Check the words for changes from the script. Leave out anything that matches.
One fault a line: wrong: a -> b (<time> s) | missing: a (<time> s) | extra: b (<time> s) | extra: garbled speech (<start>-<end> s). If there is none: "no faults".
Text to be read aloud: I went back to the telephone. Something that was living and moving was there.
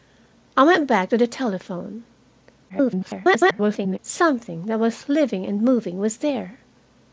extra: garbled speech (2.7-4.0 s)